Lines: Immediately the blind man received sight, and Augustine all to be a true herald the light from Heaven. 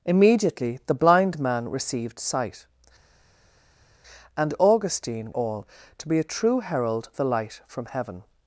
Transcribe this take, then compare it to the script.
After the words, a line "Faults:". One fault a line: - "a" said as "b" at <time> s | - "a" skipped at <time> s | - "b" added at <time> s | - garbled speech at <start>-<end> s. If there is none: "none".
Immediately the blind man received sight, and Augustine all to be a true herald the light from Heaven.
Faults:
none